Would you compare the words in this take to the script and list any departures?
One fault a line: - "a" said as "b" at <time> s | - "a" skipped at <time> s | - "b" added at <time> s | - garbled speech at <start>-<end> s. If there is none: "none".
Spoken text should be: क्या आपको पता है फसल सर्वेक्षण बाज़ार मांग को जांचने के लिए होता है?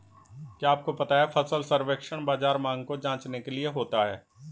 none